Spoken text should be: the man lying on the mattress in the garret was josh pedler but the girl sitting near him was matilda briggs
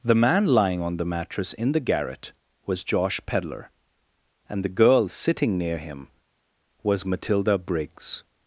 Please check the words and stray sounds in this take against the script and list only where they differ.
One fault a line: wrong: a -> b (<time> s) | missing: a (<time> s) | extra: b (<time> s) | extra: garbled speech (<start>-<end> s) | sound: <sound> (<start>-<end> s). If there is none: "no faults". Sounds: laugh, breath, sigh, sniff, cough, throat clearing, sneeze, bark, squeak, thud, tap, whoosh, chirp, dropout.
wrong: but -> and (4.5 s)